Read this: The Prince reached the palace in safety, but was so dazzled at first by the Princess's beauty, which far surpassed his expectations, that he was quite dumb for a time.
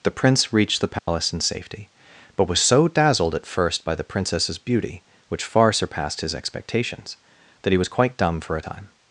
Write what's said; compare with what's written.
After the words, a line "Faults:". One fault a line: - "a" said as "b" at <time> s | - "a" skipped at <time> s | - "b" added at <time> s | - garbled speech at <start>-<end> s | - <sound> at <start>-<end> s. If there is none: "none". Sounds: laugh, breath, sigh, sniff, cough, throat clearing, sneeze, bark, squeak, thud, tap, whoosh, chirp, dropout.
The Prince reached the palace in safety, but was so dazzled at first by the Princess's beauty, which far surpassed his expectations, that he was quite dumb for a time.
Faults:
- dropout at 1.0-1.1 s